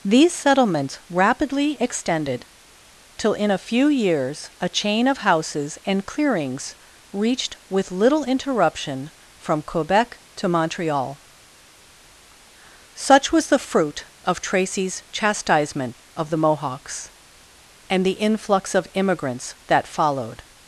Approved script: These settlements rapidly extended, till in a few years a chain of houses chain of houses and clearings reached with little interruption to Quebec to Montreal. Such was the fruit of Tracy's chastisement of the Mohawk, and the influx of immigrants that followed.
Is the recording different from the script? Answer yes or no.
yes